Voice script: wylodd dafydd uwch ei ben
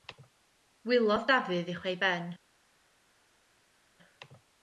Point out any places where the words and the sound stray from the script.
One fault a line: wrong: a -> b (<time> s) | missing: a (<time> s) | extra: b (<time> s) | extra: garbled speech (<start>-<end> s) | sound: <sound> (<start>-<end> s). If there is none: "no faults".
no faults